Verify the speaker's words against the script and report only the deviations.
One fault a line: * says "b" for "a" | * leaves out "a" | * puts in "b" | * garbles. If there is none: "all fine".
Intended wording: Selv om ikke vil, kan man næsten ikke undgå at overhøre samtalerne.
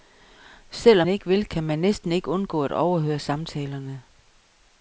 all fine